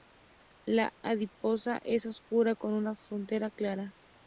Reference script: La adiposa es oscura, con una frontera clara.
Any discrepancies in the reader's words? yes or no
no